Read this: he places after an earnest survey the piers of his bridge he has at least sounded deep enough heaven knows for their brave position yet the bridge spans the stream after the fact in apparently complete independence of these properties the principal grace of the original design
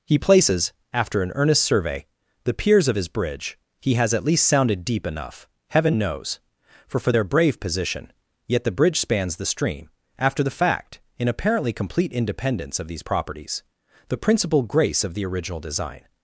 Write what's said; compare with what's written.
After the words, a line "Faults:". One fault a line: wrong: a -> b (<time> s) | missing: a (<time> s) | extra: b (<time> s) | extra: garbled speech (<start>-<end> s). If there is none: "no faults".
he places after an earnest survey the piers of his bridge he has at least sounded deep enough heaven knows for for their brave position yet the bridge spans the stream after the fact in apparently complete independence of these properties the principal grace of the original design
Faults:
extra: for (7.0 s)